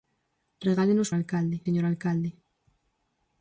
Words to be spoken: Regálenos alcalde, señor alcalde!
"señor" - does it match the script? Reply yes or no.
yes